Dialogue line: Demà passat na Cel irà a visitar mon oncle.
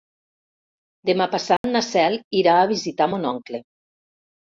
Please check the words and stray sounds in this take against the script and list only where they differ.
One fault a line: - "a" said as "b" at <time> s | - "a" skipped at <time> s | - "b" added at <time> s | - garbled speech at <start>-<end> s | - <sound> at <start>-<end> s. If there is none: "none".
- dropout at 1.6-1.6 s